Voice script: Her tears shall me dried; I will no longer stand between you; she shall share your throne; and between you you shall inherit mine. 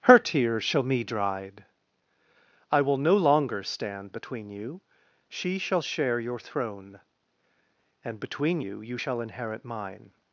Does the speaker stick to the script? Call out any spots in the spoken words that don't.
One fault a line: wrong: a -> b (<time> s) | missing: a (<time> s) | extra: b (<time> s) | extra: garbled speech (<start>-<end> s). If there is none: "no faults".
no faults